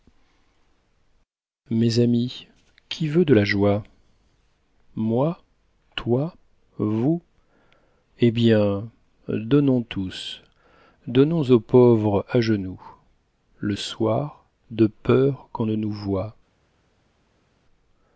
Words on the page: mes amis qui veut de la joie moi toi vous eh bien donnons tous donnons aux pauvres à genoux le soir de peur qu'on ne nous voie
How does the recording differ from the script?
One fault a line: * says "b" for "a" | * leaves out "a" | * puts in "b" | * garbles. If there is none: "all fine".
all fine